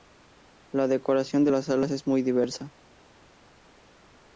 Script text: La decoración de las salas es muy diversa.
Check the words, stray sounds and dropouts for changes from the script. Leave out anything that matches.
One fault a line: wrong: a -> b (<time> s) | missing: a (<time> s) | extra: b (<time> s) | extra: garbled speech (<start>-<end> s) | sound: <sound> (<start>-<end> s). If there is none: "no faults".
no faults